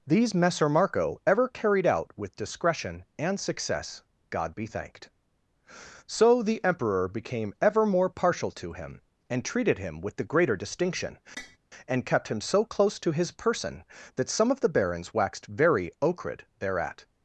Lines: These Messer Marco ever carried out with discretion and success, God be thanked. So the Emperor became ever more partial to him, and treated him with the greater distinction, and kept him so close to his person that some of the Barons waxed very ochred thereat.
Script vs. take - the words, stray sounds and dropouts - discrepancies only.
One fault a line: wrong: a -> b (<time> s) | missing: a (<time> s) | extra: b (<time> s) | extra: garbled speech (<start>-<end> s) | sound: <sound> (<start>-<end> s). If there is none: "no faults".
sound: tap (11.4-11.6 s)